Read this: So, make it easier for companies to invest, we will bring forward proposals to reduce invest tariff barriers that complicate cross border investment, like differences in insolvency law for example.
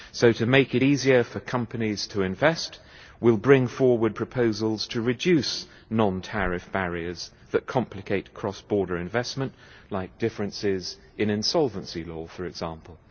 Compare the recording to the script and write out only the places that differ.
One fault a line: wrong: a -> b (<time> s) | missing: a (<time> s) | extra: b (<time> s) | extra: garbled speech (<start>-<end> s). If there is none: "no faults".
extra: to (0.3 s)
wrong: invest -> non (5.9 s)